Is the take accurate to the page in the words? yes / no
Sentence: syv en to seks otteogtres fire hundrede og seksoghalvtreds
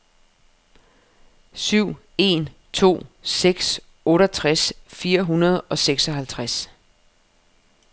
yes